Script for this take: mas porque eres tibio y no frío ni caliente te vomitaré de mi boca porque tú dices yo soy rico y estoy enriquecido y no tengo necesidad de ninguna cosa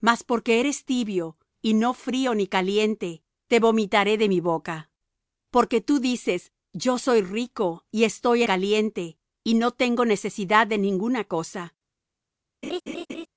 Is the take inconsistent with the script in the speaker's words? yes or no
yes